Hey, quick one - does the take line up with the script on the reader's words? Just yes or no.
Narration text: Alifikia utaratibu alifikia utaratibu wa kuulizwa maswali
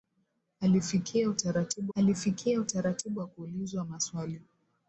yes